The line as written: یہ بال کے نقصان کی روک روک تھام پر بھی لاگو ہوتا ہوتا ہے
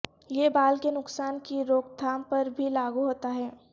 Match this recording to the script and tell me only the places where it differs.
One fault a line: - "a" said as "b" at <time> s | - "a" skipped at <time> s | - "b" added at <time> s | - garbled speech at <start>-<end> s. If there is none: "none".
- "روک" skipped at 2.0 s
- "ہوتا" skipped at 3.3 s